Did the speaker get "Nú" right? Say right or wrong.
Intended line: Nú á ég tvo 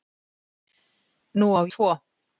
right